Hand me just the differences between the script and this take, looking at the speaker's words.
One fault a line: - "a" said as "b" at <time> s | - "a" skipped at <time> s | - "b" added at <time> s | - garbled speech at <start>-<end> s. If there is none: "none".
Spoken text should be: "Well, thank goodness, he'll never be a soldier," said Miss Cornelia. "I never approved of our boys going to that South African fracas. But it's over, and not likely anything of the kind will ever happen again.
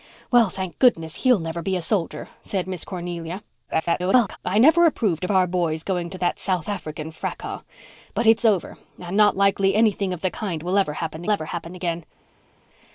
- garbled speech at 3.7-4.4 s
- "ever happen" added at 11.3 s